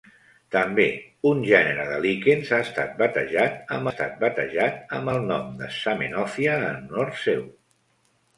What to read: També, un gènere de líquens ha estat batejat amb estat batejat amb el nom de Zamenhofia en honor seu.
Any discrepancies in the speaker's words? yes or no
no